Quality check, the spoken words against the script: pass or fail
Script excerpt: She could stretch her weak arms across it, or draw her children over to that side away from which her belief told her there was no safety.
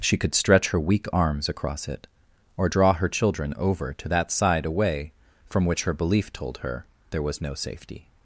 pass